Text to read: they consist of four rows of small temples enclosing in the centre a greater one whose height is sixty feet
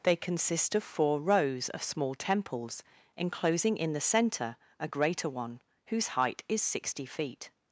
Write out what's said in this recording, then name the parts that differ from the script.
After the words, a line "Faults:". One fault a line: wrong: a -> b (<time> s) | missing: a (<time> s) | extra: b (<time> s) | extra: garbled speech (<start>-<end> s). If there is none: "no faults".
they consist of four rows of small temples enclosing in the centre a greater one whose height is sixty feet
Faults:
no faults